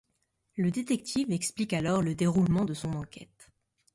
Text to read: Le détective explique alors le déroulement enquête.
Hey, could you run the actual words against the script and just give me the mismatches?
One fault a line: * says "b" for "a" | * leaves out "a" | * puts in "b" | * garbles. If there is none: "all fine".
* puts in "de son"